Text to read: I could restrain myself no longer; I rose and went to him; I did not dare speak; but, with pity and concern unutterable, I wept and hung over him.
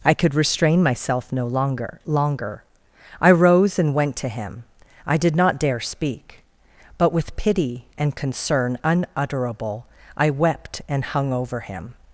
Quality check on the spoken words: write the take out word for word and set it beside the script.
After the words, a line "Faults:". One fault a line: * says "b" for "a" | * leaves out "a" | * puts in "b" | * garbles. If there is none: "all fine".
I could restrain myself no longer longer; I rose and went to him; I did not dare speak; but, with pity and concern unutterable, I wept and hung over him.
Faults:
* puts in "longer"